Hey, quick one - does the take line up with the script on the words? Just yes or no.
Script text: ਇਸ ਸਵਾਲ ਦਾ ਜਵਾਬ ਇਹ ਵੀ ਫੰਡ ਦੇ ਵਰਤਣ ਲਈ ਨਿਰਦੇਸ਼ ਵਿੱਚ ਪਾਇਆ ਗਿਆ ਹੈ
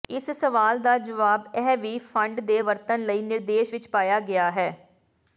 yes